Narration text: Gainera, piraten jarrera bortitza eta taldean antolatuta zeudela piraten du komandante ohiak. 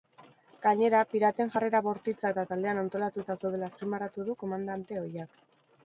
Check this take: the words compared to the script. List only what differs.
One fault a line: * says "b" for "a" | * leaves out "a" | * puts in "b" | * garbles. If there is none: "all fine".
* says "azpimarratu" for "piraten"